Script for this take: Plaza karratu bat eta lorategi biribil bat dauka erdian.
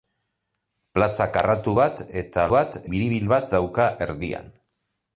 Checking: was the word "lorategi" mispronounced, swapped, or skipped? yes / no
yes